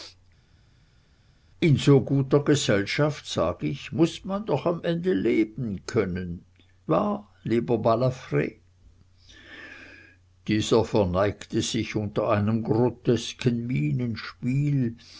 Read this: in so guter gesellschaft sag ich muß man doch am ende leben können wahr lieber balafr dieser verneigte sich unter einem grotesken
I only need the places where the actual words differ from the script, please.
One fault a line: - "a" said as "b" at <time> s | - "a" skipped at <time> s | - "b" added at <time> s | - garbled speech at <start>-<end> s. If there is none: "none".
none